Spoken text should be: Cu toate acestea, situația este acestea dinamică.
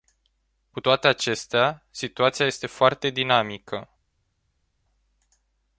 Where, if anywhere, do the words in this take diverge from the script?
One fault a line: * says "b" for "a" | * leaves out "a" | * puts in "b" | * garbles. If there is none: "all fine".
* says "foarte" for "acestea"